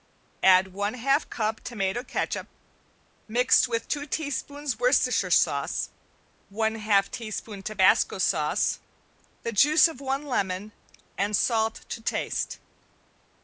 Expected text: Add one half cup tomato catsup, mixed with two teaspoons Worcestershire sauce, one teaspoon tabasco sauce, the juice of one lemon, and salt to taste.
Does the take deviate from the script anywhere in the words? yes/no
yes